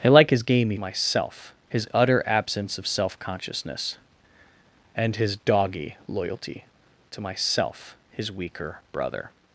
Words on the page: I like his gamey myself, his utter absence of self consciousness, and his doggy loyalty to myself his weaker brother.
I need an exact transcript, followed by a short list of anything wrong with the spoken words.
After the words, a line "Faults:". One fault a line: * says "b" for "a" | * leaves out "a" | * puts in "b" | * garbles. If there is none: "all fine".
I like his gamey myself, his utter absence of self consciousness, and his doggy loyalty to myself his weaker brother.
Faults:
all fine